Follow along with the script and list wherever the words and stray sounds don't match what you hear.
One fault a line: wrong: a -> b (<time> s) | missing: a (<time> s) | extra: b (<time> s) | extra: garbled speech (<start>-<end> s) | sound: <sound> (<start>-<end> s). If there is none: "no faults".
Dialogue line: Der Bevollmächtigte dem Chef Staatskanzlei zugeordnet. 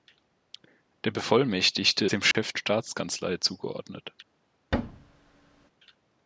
sound: dropout (2.3-2.3 s)
sound: thud (4.7-5.7 s)